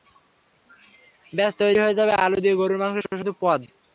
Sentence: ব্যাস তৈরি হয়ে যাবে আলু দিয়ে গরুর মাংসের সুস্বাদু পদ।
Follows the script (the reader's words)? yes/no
yes